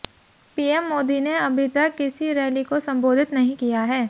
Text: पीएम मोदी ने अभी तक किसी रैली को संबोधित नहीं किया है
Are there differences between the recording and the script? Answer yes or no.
no